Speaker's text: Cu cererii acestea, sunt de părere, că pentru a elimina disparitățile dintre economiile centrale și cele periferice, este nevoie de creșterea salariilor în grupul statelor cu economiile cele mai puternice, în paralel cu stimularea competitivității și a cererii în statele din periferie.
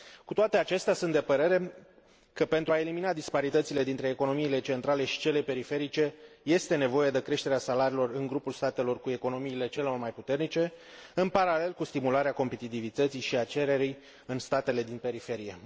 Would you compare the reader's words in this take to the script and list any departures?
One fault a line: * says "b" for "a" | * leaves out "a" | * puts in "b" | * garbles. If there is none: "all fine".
* says "toate" for "cererii"